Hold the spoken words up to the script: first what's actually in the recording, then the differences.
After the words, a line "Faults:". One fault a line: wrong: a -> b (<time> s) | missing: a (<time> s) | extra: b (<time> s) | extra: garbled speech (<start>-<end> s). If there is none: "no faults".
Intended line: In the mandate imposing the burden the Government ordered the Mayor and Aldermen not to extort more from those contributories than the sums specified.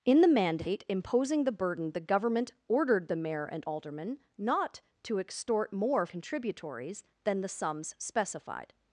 In the mandate imposing the burden the Government ordered the Mayor and Aldermen not to extort more contributories than the sums specified.
Faults:
missing: from those (6.1 s)